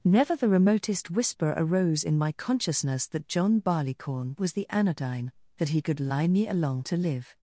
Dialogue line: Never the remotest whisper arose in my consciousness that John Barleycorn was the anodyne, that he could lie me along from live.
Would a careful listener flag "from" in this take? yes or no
yes